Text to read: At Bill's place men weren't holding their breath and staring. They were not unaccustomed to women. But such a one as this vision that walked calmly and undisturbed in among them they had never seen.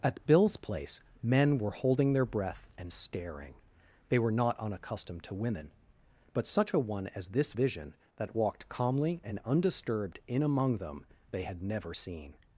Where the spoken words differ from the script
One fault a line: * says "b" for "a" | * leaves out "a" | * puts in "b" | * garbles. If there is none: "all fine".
* says "were" for "weren't"